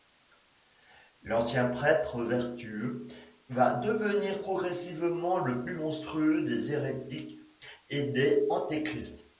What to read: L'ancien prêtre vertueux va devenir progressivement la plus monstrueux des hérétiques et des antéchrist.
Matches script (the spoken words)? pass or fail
fail